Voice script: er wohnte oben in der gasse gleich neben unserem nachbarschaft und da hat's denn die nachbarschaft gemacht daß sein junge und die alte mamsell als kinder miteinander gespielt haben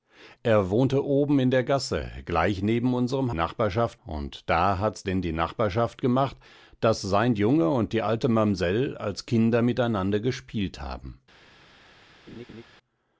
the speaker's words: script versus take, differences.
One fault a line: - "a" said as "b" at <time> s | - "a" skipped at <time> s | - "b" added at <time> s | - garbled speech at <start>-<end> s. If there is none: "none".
none